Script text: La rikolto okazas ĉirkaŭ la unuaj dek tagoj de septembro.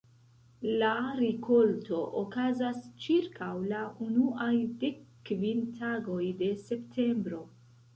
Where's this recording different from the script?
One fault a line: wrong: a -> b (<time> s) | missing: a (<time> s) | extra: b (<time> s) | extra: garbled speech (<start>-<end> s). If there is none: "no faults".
extra: kvin (5.3 s)